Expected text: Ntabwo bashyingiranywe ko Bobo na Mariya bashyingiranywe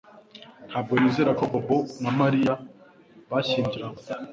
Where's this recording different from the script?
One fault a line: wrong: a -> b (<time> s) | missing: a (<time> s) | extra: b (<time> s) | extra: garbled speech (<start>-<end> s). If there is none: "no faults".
wrong: bashyingiranywe -> nizera (1.0 s)